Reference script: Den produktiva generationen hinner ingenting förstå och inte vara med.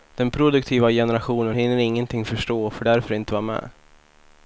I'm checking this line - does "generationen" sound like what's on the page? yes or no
yes